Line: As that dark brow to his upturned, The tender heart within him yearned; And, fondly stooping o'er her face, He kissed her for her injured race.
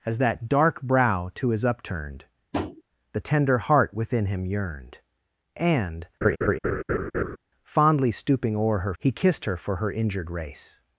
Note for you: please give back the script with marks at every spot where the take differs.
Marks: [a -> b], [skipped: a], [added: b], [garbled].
As that dark brow to his upturned, The tender heart within him yearned; And, fondly stooping o'er her [skipped: face,] He kissed her for her injured race.